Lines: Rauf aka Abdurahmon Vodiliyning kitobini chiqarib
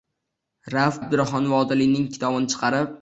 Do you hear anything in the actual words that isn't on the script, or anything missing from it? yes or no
yes